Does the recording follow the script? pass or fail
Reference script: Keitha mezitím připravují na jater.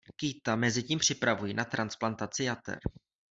fail